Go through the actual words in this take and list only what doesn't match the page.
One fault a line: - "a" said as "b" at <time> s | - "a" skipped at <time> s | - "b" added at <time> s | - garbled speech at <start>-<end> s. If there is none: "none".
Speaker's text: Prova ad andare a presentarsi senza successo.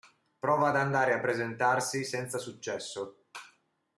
none